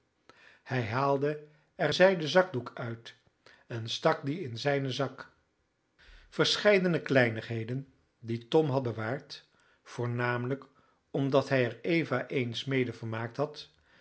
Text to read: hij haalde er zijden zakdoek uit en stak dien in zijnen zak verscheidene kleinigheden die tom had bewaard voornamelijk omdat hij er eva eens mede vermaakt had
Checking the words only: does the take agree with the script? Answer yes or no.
yes